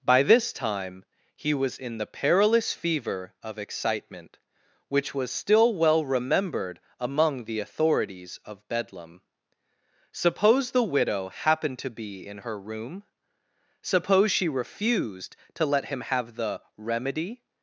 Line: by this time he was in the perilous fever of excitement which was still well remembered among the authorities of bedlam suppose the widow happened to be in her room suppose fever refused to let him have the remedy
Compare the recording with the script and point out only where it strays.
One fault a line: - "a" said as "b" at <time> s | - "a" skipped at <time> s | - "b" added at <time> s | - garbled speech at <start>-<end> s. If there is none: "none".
- "fever" said as "she" at 14.3 s